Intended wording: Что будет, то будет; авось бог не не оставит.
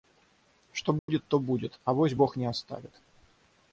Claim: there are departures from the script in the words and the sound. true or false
true